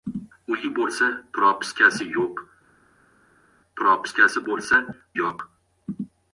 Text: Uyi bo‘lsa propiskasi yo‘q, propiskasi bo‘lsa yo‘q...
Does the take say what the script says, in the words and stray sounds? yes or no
yes